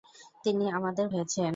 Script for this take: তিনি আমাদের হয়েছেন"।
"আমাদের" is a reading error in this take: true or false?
false